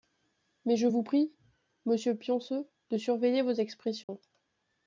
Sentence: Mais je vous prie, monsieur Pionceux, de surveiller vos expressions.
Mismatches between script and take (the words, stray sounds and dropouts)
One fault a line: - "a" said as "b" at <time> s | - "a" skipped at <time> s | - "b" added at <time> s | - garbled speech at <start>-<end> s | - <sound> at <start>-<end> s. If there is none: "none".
- dropout at 4.0-4.1 s